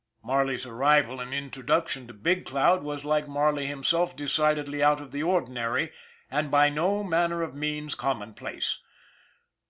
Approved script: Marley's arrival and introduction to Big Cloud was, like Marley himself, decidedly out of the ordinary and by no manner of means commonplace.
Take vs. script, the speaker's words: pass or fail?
pass